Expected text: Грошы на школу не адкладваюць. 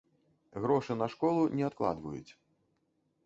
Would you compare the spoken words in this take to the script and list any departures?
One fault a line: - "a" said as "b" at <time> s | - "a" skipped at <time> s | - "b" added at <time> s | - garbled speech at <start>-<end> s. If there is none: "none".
none